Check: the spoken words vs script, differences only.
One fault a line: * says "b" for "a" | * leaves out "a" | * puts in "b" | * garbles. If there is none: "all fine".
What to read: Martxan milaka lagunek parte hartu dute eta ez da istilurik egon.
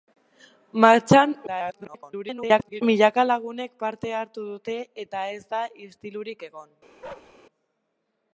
* garbles